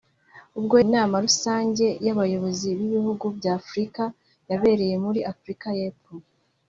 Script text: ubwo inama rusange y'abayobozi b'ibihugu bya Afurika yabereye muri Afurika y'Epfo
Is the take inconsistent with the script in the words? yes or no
no